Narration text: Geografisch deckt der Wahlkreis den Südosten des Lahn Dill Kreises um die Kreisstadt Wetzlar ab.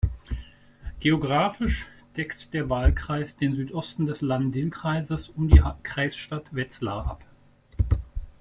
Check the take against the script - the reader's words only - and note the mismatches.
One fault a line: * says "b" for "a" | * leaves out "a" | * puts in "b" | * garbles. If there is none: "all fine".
all fine